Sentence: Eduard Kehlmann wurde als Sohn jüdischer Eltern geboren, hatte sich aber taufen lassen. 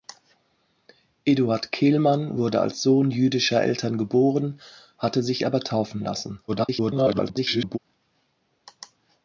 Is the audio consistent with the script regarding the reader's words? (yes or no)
no